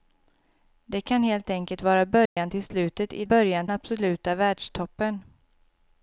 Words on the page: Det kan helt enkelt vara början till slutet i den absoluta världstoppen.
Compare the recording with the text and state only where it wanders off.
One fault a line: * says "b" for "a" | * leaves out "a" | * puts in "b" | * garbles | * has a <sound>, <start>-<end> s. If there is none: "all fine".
* has a dropout, 2.3-2.4 s
* says "början" for "den"